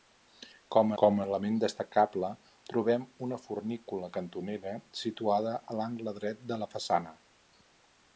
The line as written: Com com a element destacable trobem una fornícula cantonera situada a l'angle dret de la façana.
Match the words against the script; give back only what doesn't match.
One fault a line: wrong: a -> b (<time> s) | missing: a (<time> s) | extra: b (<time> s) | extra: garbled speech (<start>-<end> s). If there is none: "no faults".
no faults